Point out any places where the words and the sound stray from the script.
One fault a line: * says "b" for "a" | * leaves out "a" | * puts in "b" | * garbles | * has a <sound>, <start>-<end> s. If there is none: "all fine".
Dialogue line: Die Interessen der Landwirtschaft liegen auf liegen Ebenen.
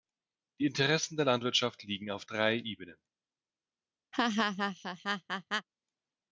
* says "drei" for "liegen"
* has a laugh, 4.1-5.7 s